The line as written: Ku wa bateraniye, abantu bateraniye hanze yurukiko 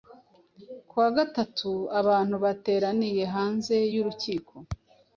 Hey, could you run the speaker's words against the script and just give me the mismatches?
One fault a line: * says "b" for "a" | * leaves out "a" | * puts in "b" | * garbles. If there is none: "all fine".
* says "gatatu" for "bateraniye"